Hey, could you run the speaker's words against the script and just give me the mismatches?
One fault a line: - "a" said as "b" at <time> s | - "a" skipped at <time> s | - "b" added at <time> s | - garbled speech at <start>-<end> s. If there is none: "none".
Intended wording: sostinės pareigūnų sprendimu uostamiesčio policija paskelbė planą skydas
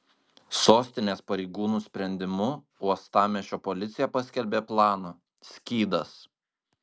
none